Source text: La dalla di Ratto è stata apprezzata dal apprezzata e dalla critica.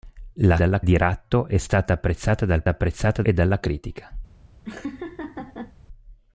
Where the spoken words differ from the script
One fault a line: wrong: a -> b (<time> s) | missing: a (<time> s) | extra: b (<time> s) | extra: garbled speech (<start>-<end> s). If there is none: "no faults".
no faults